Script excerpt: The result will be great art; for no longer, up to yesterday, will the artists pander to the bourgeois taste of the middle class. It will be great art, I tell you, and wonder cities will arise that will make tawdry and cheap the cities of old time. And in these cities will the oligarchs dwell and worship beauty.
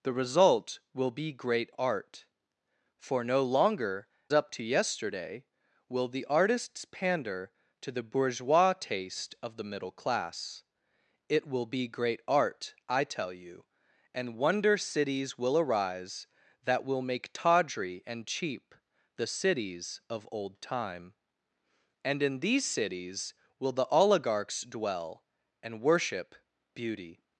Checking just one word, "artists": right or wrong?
right